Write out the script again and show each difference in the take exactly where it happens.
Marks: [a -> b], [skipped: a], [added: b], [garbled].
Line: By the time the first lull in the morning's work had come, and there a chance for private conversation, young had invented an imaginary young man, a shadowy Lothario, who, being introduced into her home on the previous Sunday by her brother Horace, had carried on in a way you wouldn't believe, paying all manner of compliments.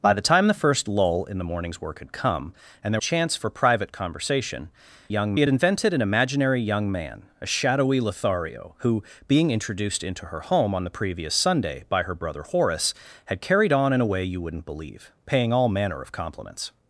By the time the first lull in the morning's work had come, and there a chance for private conversation, young had invented an imaginary young man, a shadowy Lothario, who, being introduced into her home on the previous Sunday by her brother Horace, had carried on in a way you wouldn't believe, paying all manner of compliments.